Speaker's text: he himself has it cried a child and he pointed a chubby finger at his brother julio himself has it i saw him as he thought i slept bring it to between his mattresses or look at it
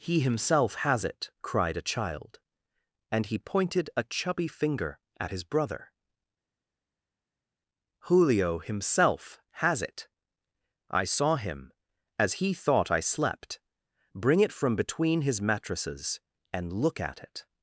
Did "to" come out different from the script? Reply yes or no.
yes